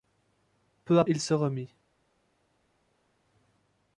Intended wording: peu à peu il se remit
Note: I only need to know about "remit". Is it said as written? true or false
true